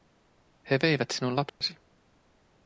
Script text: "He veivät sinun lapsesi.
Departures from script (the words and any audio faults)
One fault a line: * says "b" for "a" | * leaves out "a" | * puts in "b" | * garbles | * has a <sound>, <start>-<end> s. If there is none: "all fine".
* has a dropout, 1.5-1.6 s